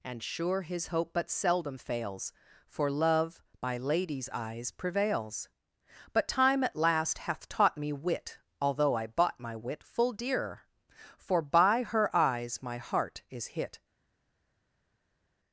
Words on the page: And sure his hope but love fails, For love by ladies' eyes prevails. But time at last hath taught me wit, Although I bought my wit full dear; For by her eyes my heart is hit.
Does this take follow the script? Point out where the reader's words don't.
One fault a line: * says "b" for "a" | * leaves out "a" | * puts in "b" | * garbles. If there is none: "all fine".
* says "seldom" for "love"